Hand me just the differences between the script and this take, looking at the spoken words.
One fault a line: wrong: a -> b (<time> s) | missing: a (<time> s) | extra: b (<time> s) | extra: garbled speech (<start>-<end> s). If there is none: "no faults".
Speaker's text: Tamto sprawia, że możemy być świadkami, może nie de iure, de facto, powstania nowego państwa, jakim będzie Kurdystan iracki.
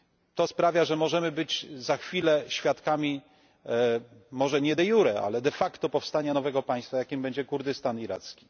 wrong: Tamto -> To (0.3 s)
extra: za chwilę (1.8 s)
extra: ale (5.2 s)